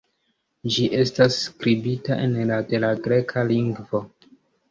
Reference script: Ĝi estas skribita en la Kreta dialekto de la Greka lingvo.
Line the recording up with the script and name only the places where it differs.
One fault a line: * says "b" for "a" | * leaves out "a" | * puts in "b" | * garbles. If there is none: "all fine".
* leaves out "Kreta dialekto"